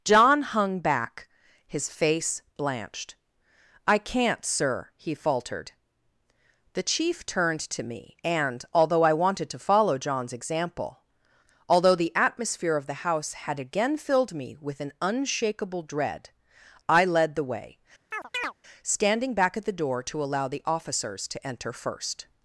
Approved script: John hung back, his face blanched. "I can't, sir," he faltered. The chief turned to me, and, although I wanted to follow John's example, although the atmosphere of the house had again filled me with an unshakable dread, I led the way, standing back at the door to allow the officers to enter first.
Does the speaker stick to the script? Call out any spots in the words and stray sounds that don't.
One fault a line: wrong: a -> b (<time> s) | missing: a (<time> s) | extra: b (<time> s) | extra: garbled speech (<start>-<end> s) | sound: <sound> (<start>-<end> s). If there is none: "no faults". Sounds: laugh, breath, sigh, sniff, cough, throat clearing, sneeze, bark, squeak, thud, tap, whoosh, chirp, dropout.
sound: chirp (18.1-18.5 s)